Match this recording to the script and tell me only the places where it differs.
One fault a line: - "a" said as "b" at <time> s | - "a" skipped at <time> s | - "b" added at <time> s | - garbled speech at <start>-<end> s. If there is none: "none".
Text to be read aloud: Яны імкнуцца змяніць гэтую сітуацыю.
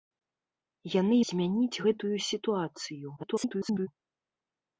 - "імкнуцца" skipped at 1.1 s
- garbled speech at 3.2-3.9 s